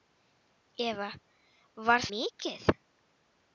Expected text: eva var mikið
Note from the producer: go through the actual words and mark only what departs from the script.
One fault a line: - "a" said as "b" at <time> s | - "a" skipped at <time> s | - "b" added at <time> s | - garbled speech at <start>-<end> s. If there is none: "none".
none